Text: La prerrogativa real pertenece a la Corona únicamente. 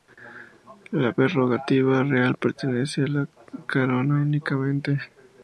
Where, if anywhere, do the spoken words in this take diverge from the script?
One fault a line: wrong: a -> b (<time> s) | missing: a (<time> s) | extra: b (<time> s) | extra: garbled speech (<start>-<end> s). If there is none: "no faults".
no faults